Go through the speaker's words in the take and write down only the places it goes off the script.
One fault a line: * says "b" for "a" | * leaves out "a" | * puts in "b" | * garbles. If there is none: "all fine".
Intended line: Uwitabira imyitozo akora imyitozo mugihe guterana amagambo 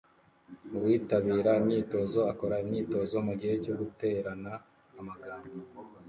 * puts in "cyo"